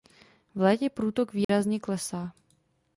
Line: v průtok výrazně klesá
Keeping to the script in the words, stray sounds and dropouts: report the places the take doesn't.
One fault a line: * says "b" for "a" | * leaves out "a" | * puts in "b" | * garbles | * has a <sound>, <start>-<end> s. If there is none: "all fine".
* puts in "létě"
* has a dropout, 1.4-1.5 s